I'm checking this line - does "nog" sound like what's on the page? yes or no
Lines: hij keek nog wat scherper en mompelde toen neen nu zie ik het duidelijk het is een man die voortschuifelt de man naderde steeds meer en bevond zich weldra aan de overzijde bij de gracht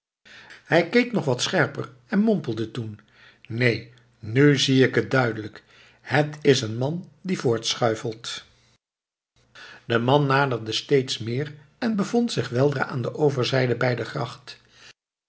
yes